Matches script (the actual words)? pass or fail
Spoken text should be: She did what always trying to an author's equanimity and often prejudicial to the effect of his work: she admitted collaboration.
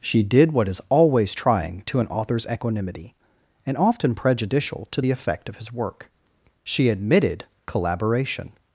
fail